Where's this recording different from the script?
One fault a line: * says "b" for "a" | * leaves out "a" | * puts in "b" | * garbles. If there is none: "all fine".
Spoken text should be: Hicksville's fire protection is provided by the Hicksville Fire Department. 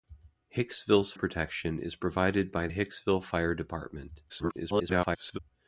* leaves out "fire"
* leaves out "the"
* garbles